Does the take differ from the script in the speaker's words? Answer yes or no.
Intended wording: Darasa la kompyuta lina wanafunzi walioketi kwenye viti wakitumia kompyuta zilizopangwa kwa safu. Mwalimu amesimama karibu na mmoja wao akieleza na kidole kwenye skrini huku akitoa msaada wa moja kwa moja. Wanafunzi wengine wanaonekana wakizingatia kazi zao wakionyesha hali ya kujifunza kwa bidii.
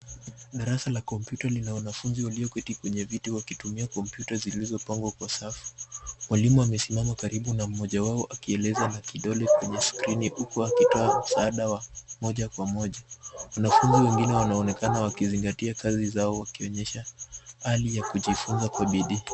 no